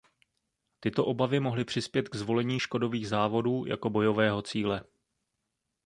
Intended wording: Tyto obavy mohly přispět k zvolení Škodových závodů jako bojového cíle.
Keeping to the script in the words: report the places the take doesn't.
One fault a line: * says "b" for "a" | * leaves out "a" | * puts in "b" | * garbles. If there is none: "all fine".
all fine